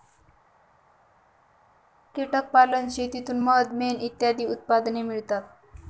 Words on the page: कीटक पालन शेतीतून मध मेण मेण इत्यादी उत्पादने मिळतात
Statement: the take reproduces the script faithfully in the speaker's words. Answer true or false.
false